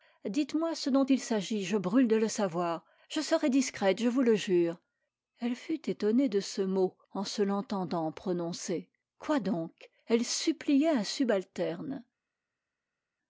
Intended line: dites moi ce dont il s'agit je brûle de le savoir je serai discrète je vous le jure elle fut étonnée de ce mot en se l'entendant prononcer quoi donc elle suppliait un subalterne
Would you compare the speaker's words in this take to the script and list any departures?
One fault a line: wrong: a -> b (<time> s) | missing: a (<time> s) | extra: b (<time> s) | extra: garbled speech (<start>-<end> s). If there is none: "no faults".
no faults